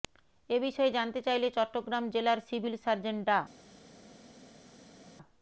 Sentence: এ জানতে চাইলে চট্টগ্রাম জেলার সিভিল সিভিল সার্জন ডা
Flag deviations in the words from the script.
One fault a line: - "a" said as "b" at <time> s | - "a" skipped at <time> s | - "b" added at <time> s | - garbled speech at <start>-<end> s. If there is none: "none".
- "বিষয়ে" added at 0.7 s
- "সিভিল" skipped at 2.8 s